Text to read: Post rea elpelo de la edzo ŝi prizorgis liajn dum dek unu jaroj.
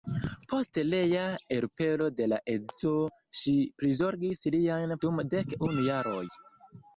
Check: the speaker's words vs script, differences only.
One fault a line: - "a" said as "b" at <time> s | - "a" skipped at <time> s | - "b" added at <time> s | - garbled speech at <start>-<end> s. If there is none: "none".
none